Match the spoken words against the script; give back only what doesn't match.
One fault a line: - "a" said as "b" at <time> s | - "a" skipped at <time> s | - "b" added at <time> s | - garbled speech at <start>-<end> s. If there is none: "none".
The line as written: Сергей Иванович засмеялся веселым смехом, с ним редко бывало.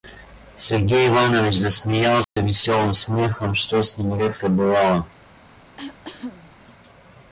- "что" added at 3.5 s